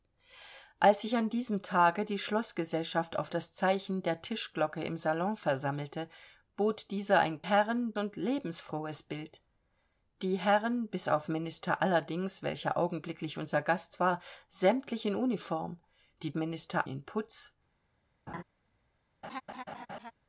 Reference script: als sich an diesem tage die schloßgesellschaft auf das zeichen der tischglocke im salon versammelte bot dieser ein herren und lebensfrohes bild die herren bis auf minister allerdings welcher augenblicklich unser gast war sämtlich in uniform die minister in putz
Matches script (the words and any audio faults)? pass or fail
fail